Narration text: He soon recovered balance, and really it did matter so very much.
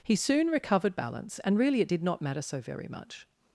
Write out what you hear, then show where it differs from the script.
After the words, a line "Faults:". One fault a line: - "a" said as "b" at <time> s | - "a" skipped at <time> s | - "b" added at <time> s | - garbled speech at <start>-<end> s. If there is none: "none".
He soon recovered balance, and really it did not matter so very much.
Faults:
- "not" added at 2.0 s